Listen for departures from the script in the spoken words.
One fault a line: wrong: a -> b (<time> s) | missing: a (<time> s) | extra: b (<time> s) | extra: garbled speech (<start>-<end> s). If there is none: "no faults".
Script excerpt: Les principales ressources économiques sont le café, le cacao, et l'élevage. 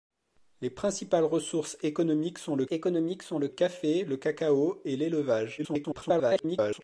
extra: économiques sont le (2.7 s)
extra: garbled speech (5.6-6.8 s)